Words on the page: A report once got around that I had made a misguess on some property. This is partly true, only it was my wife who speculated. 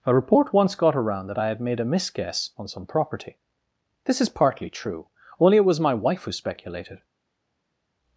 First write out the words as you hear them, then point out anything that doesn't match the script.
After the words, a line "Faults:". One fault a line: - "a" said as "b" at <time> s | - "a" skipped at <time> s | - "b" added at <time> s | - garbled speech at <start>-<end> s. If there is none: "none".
A report once got around that I had made a misguess on some property. This is partly true, only it was my wife who speculated.
Faults:
none